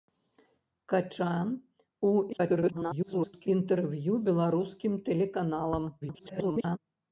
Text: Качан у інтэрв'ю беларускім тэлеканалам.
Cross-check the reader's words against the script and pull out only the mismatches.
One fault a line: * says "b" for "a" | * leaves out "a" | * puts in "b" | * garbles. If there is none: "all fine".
* garbles
* garbles